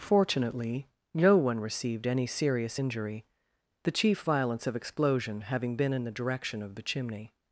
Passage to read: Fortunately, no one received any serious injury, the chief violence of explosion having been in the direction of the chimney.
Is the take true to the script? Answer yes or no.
yes